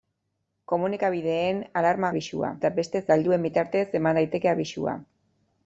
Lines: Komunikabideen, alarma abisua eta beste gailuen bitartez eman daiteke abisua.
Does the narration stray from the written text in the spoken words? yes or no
no